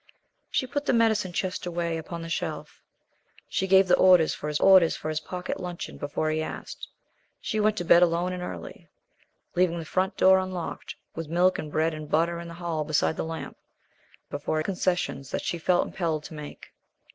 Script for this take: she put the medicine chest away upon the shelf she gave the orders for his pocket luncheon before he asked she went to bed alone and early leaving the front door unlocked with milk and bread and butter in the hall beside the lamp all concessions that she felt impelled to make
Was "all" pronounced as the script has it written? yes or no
no